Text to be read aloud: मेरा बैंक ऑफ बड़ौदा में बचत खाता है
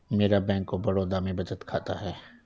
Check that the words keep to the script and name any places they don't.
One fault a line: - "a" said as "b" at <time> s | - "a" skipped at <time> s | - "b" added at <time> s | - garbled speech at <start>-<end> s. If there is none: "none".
none